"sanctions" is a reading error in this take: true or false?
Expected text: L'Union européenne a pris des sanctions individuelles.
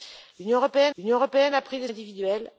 true